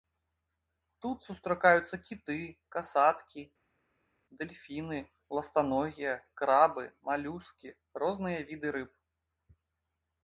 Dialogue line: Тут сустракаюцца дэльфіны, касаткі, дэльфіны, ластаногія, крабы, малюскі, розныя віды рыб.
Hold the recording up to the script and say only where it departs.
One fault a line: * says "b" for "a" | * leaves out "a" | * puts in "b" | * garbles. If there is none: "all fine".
* says "кіты" for "дэльфіны"